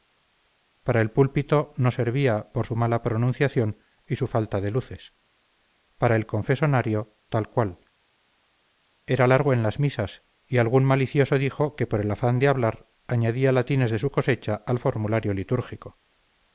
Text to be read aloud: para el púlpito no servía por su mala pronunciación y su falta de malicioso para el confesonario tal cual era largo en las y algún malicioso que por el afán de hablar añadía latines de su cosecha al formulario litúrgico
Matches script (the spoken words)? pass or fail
fail